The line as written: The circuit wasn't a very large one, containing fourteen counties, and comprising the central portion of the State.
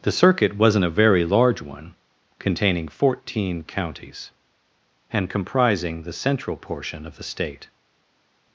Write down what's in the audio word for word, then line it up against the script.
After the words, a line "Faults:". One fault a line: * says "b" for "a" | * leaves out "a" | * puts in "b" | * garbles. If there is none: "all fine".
The circuit wasn't a very large one, containing fourteen counties, and comprising the central portion of the State.
Faults:
all fine